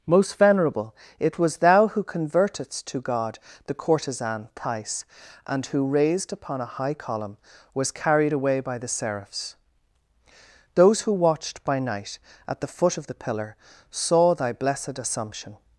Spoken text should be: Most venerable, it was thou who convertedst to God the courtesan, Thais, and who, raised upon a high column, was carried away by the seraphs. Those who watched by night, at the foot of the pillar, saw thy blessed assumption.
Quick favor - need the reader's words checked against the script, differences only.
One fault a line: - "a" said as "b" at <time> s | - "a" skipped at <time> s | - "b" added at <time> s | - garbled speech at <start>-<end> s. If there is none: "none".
none